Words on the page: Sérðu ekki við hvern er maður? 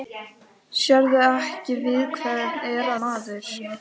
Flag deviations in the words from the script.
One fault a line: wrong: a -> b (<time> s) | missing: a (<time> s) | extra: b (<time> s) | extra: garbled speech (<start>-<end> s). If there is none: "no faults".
no faults